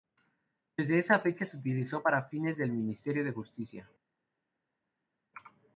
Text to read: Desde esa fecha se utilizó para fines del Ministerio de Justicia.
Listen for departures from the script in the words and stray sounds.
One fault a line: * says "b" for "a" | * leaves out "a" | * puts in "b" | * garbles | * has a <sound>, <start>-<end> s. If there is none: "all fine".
all fine